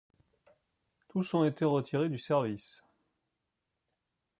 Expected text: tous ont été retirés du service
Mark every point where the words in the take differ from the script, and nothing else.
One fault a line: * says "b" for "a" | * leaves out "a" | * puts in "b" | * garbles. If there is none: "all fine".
all fine